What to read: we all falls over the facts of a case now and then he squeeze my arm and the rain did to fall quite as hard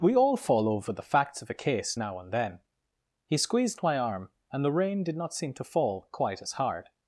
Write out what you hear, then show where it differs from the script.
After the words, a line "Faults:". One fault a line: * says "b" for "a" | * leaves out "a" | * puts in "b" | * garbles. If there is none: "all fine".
we all fall over the facts of a case now and then he squeezed my arm and the rain did not seem to fall quite as hard
Faults:
* says "fall" for "falls"
* says "squeezed" for "squeeze"
* puts in "not seem"